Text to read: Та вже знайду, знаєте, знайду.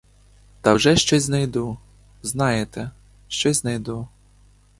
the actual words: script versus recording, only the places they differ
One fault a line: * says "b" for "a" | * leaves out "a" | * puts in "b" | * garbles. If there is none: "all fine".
* puts in "щось"
* puts in "щось"